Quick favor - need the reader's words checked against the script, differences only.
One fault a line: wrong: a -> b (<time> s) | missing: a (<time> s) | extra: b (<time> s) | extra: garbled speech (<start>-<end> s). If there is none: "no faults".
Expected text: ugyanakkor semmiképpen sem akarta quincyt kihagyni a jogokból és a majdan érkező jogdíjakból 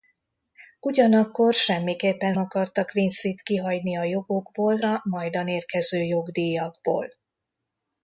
missing: sem (2.3 s)
missing: és (4.8 s)